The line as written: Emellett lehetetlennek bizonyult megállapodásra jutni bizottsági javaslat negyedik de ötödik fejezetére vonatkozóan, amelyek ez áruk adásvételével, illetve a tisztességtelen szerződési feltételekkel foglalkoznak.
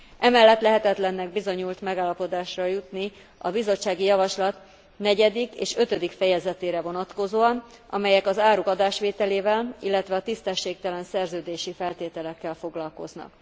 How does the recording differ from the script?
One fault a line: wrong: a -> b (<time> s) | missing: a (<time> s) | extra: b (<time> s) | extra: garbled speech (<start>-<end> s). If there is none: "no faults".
extra: a (3.4 s)
wrong: de -> és (5.5 s)
wrong: ez -> az (8.3 s)